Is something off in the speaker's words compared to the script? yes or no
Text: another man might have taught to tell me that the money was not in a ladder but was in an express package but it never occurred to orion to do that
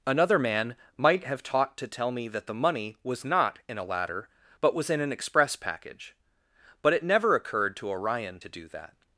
no